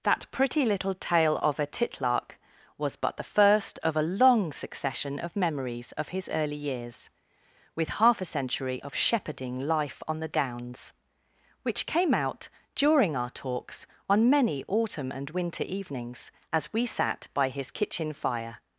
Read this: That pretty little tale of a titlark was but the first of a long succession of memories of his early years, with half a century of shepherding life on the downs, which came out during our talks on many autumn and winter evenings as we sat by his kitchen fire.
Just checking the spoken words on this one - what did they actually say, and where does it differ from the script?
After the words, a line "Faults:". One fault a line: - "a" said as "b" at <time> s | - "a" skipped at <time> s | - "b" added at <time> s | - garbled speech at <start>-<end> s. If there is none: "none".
That pretty little tale of a titlark was but the first of a long succession of memories of his early years, with half a century of shepherding life on the downs, which came out during our talks on many autumn and winter evenings as we sat by his kitchen fire.
Faults:
none